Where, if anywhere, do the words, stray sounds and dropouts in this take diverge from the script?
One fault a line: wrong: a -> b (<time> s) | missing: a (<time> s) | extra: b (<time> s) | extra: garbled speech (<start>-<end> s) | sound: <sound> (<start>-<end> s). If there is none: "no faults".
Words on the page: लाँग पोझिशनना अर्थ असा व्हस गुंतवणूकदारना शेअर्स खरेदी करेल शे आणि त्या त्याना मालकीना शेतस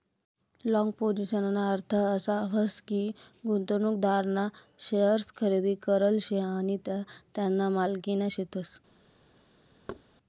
extra: की (2.8 s)
sound: thud (9.9-10.0 s)